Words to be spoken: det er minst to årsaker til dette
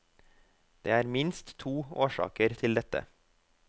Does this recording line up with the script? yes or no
yes